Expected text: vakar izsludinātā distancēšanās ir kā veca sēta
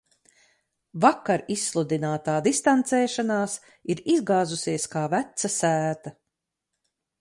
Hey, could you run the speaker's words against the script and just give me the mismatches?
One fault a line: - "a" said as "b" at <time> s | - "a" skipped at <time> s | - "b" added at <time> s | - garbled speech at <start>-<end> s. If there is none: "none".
- "izgāzusies" added at 4.2 s